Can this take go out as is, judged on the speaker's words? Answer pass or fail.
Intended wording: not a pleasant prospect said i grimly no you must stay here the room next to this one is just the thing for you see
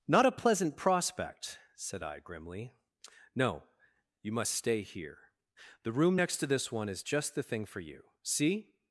pass